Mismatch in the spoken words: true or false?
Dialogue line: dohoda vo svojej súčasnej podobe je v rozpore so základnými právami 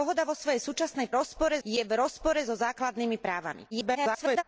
true